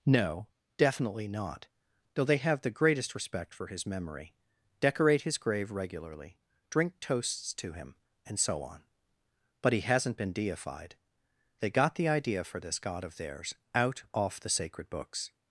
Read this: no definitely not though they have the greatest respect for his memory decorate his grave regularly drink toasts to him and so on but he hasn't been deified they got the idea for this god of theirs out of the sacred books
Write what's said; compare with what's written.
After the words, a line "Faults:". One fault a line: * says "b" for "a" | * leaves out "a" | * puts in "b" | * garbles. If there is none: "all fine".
no definitely not though they have the greatest respect for his memory decorate his grave regularly drink toasts to him and so on but he hasn't been deified they got the idea for this god of theirs out off the sacred books
Faults:
* says "off" for "of"